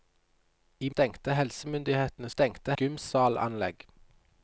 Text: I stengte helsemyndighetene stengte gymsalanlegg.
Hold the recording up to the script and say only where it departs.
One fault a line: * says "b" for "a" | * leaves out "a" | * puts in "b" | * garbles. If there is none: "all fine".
all fine